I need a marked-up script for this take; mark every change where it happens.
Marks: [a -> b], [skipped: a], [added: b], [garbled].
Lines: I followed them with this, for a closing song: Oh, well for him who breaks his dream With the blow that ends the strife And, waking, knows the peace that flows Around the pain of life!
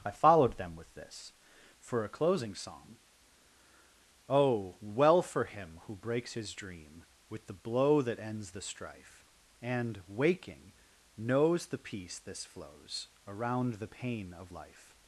I followed them with this, for a closing song: Oh, well for him who breaks his dream With the blow that ends the strife And, waking, knows the peace [that -> this] flows Around the pain of life!